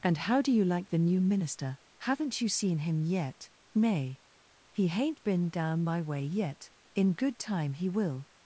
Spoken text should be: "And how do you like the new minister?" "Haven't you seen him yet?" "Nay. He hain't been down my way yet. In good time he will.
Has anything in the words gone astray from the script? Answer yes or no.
no